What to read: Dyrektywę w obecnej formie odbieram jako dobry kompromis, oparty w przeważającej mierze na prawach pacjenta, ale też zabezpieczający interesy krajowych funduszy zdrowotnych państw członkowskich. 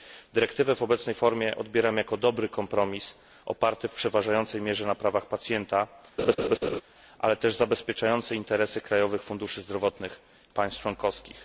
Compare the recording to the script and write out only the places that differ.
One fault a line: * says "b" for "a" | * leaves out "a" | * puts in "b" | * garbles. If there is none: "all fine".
all fine